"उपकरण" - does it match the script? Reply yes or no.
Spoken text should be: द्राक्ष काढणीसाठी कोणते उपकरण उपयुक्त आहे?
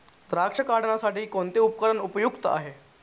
yes